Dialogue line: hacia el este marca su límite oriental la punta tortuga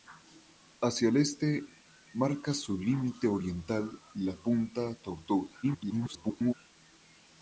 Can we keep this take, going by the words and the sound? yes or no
no